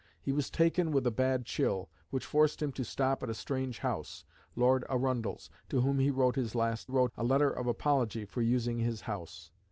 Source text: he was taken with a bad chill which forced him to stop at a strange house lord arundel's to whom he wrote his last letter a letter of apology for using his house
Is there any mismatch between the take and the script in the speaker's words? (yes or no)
yes